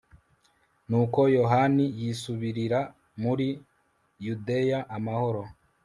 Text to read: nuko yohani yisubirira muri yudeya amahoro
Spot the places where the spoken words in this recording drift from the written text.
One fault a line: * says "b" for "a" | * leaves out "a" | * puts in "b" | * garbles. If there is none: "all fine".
all fine